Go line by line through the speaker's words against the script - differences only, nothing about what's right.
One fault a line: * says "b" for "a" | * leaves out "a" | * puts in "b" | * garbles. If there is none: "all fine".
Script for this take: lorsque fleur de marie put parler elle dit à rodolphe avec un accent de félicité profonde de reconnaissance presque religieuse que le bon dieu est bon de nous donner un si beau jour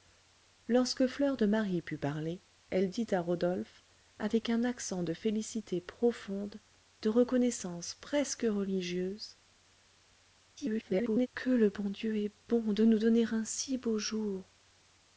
* garbles